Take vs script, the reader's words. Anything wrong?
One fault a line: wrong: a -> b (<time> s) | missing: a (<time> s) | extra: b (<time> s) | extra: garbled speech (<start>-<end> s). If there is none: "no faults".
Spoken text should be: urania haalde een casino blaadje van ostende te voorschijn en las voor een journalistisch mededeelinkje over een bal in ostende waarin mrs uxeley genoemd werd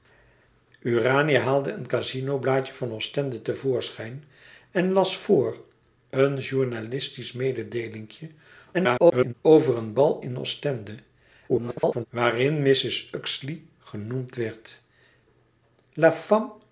extra: garbled speech (8.7-9.3 s)
extra: garbled speech (11.5-12.1 s)